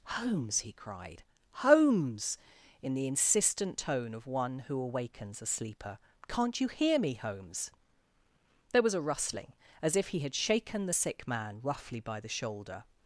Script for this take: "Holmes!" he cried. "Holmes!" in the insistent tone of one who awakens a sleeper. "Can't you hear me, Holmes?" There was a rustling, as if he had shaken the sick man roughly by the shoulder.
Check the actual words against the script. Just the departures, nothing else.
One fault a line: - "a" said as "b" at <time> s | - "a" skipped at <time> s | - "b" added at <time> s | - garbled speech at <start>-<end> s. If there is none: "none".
none